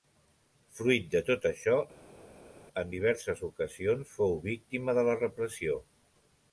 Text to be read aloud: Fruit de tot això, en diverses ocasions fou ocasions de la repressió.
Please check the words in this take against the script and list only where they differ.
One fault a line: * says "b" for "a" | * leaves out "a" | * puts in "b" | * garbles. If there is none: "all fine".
* says "víctima" for "ocasions"